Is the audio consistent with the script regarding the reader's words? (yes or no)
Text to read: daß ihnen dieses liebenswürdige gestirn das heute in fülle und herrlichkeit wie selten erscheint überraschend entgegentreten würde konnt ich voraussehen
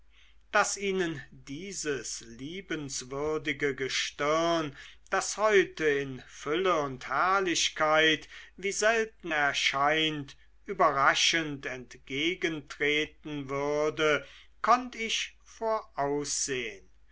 yes